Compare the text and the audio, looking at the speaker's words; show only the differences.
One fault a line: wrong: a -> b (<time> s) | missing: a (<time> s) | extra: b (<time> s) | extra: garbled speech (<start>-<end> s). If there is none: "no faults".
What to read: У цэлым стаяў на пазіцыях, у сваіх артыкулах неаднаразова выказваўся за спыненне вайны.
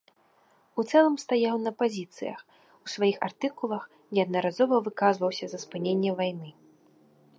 no faults